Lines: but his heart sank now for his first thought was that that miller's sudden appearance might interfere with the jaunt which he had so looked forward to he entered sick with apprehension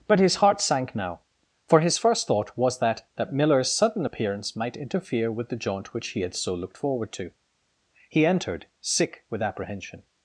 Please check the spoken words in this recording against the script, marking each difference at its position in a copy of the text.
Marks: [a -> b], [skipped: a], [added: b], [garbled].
but his heart sank now for his first thought was that that miller's sudden appearance might interfere with the jaunt which he had so looked forward to he entered sick with apprehension